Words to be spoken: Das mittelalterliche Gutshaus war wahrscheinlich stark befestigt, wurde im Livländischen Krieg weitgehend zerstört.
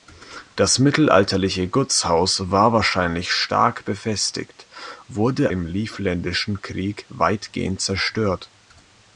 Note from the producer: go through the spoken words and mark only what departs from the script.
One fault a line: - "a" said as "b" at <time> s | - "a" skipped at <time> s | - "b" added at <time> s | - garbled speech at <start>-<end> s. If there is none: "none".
none